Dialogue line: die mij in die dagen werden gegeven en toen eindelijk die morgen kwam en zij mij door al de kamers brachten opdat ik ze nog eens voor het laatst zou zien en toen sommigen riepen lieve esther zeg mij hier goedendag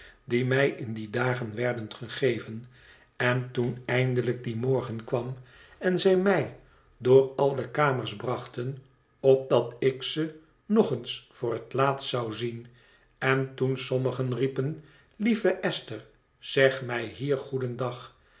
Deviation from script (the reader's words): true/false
false